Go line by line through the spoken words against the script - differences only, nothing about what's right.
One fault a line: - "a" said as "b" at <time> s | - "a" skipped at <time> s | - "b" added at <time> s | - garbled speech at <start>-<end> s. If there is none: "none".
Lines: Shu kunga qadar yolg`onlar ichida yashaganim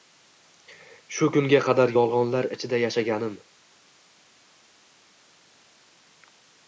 none